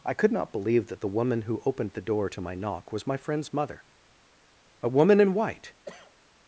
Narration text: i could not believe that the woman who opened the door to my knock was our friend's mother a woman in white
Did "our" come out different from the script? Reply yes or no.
yes